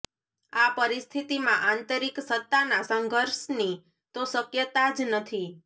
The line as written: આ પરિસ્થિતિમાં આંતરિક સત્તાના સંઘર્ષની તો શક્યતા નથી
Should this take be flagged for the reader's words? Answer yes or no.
yes